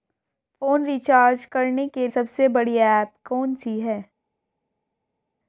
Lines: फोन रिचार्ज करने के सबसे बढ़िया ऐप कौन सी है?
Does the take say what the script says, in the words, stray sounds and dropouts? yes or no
yes